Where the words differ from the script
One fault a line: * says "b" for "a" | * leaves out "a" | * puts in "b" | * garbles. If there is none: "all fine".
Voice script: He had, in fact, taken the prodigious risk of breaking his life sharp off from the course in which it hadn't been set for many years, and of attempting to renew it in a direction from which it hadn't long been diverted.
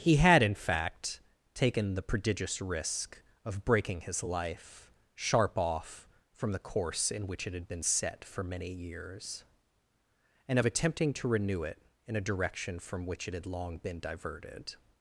* says "had" for "hadn't"
* says "had" for "hadn't"